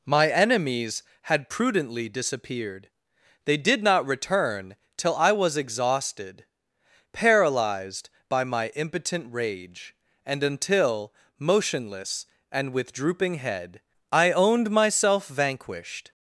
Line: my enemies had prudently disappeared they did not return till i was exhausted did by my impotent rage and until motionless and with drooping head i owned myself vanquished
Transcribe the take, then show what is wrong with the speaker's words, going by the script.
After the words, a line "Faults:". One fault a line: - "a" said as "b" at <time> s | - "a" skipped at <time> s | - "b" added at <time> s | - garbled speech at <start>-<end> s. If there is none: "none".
my enemies had prudently disappeared they did not return till i was exhausted paralyzed by my impotent rage and until motionless and with drooping head i owned myself vanquished
Faults:
- "did" said as "paralyzed" at 7.1 s